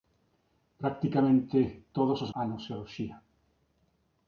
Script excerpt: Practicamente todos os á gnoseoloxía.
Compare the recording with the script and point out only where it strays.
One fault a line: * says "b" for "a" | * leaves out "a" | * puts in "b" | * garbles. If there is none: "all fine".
all fine